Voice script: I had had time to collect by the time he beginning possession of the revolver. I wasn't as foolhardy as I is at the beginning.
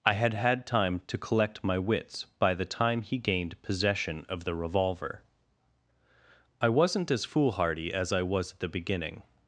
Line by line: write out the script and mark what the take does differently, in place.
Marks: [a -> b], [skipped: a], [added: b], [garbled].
I had had time to collect [added: my wits] by the time he [beginning -> gained] possession of the revolver. I wasn't as foolhardy as I [is -> was] at the beginning.